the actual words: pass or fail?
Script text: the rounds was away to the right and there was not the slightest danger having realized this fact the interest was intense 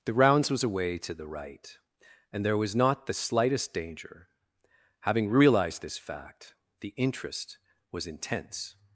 pass